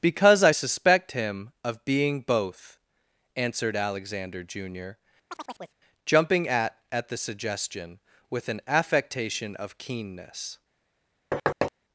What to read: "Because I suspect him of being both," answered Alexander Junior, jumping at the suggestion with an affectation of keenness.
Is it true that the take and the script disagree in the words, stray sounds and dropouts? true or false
true